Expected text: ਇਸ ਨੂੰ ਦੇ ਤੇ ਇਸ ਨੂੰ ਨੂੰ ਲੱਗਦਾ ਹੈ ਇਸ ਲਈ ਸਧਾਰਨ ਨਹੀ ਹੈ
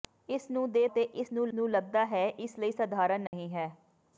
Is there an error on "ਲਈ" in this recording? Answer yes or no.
no